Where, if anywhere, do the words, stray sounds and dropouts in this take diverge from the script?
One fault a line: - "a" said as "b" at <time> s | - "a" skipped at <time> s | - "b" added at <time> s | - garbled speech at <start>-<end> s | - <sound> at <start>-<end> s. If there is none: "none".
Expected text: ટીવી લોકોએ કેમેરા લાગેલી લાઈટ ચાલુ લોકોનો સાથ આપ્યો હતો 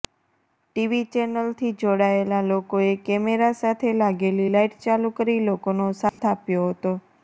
- "ચેનલથી જોડાયેલા" added at 1.1 s
- "સાથે" added at 3.6 s
- "કરી" added at 5.2 s
- dropout at 6.1-6.2 s